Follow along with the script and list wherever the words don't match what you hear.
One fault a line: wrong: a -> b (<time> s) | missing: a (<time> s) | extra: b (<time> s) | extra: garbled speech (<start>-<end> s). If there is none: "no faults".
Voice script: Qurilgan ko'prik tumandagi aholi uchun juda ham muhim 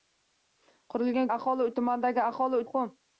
wrong: ko'prik -> aholi (1.3 s)
missing: uchun juda ham (2.6 s)